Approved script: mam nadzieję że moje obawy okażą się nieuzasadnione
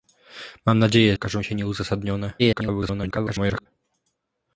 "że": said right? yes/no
no